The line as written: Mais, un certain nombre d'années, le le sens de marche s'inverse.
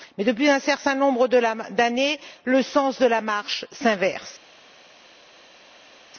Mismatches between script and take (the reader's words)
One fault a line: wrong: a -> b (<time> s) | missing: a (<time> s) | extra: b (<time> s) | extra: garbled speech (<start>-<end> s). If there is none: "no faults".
extra: depuis (0.2 s)
missing: le (2.6 s)
extra: la (3.0 s)